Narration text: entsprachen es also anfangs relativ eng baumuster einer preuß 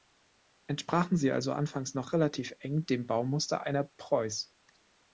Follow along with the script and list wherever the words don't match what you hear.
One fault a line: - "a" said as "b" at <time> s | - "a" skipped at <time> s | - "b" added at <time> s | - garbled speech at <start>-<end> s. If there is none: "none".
- "es" said as "sie" at 1.1 s
- "noch" added at 1.9 s
- "dem" added at 2.9 s